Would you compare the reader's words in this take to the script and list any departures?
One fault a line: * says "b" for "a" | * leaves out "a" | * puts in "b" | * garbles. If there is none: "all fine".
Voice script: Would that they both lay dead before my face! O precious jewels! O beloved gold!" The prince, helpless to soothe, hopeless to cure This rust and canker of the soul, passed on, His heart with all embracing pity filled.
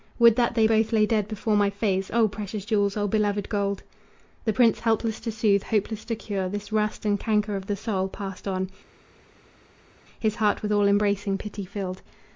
all fine